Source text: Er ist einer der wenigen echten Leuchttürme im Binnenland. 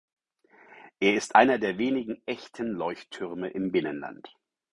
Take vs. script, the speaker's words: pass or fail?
pass